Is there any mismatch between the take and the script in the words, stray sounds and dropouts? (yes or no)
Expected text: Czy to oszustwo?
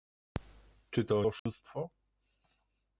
yes